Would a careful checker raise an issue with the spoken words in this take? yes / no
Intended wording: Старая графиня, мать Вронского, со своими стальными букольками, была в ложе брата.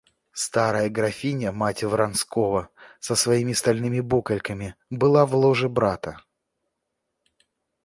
no